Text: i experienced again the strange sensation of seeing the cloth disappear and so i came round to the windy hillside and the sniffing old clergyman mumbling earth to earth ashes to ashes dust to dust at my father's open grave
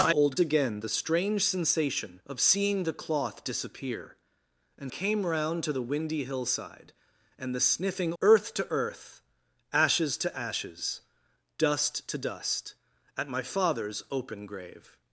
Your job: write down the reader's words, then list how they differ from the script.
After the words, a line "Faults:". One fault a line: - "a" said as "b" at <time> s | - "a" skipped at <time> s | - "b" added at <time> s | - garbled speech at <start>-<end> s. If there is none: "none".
i old again the strange sensation of seeing the cloth disappear and came round to the windy hillside and the sniffing earth to earth ashes to ashes dust to dust at my father's open grave
Faults:
- "experienced" said as "old" at 0.1 s
- "so i" skipped at 4.9 s
- "old clergyman mumbling" skipped at 8.1 s